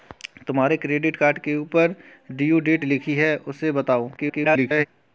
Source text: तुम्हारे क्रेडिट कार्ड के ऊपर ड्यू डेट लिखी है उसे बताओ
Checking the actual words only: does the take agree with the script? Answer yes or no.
no